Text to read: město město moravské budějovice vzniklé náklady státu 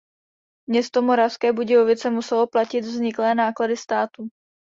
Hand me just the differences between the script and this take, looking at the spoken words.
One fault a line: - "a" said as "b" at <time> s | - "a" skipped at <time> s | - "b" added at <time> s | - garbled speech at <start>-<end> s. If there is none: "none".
- "město" skipped at 1.0 s
- "muselo platit" added at 2.1 s